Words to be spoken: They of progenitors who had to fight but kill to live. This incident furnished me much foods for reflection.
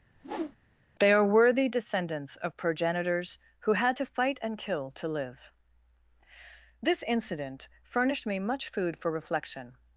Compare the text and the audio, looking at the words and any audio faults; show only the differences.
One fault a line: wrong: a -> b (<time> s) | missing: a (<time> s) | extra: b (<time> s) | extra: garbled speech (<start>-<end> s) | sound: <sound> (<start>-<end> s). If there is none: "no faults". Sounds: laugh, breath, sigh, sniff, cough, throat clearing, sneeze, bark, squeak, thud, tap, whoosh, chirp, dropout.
sound: whoosh (0.1-0.6 s)
extra: are worthy descendants (1.1 s)
wrong: but -> and (4.4 s)
wrong: foods -> food (8.7 s)